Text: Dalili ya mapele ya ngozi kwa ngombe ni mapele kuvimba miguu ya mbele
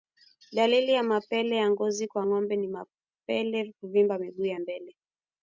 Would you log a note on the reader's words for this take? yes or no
no